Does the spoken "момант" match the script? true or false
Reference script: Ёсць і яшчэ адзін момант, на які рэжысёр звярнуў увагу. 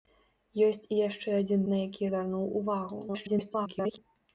false